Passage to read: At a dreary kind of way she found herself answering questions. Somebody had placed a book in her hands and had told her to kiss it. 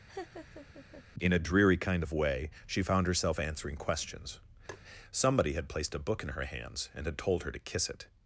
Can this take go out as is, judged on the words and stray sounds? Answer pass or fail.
fail